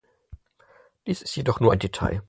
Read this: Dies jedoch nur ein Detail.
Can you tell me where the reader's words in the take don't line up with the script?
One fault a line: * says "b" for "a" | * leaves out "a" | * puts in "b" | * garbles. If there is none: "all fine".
* puts in "ist"